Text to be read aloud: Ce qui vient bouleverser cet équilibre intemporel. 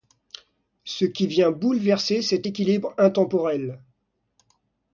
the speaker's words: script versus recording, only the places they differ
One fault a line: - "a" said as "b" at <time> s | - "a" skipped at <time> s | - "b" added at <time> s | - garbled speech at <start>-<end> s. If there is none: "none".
none